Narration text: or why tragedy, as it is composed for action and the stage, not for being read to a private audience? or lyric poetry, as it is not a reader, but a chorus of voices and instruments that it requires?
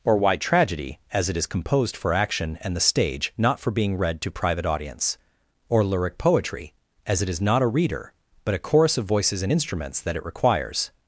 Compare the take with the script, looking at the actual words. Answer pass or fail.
fail